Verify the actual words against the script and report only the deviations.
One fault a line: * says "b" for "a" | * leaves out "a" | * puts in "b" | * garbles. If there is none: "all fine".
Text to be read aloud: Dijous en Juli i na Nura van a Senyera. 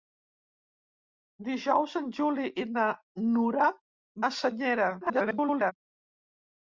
* leaves out "van"
* garbles